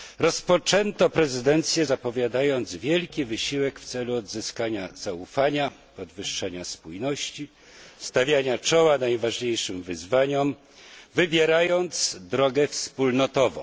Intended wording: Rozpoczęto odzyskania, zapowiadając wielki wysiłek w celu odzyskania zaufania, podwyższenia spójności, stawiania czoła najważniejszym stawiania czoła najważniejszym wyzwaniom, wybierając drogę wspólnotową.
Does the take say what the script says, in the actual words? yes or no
no